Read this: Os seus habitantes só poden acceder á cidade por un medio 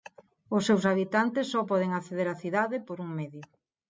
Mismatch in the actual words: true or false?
false